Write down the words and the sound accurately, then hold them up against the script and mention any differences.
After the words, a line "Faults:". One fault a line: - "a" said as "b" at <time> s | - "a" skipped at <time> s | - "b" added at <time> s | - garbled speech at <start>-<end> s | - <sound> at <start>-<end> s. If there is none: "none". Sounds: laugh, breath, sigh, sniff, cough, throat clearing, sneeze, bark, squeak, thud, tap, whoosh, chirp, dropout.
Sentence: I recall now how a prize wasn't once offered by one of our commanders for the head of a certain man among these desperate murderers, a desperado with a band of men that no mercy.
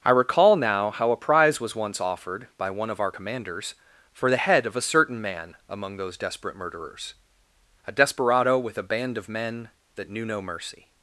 I recall now how a prize was once offered by one of our commanders for the head of a certain man among those desperate murderers, a desperado with a band of men that knew no mercy.
Faults:
- "wasn't" said as "was" at 1.6 s
- "these" said as "those" at 6.0 s
- "knew" added at 10.1 s